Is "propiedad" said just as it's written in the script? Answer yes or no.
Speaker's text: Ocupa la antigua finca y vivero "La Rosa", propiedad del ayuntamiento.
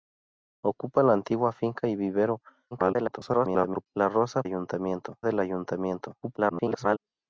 no